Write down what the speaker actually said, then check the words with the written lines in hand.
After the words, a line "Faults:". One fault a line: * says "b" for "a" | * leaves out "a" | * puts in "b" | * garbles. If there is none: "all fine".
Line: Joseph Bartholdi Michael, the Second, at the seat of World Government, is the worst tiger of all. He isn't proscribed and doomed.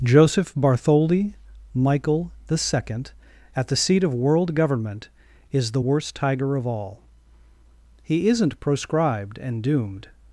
Joseph Bartholdi Michael, the Second, at the seat of World Government, is the worst tiger of all. He isn't proscribed and doomed.
Faults:
all fine